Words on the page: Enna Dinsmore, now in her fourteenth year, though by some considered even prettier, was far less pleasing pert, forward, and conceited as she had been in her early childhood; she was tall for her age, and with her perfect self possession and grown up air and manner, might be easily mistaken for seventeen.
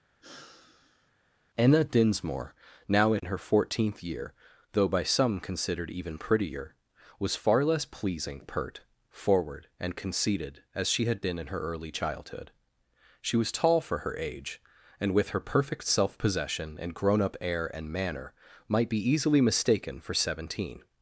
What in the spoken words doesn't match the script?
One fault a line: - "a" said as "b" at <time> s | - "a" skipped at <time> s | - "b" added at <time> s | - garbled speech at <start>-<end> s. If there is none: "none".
none